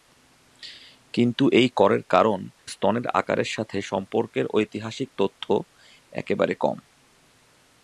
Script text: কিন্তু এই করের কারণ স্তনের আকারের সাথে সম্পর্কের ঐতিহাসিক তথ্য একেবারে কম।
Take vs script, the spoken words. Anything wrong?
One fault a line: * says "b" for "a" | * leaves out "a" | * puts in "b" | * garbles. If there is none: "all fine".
all fine